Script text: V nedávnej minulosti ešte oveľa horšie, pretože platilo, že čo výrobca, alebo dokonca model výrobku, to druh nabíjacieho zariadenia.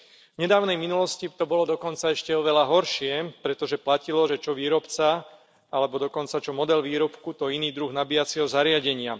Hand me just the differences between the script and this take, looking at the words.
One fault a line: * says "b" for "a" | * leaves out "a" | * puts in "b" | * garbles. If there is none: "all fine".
* puts in "to bolo dokonca"
* puts in "čo"
* puts in "iný"